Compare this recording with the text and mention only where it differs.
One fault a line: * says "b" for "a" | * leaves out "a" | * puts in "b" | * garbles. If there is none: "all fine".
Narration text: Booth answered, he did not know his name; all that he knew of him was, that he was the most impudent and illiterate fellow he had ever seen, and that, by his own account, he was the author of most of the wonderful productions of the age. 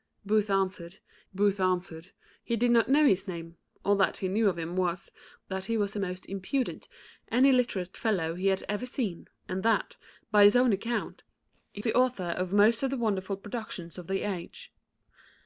* puts in "booth answered"
* leaves out "was"